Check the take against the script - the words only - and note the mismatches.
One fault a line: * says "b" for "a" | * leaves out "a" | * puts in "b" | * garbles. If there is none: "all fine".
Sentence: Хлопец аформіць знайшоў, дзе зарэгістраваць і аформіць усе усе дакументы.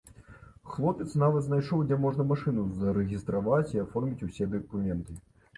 * says "нават" for "аформіць"
* puts in "можна машыну"
* leaves out "усе"